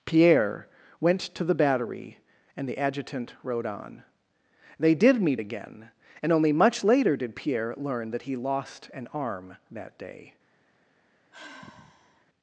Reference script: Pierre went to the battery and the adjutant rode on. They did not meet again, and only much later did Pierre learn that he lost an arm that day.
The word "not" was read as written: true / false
false